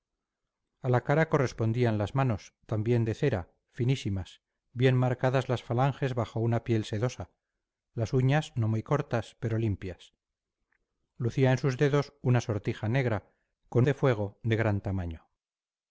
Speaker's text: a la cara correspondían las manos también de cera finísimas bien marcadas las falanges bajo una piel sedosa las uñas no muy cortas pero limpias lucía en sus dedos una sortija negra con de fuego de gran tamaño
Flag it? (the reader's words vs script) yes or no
no